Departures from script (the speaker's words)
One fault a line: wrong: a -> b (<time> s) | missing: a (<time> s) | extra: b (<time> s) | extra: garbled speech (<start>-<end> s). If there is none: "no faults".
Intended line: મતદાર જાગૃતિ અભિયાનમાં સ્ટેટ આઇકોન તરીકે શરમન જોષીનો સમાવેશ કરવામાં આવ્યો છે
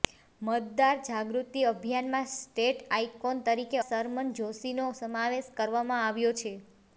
no faults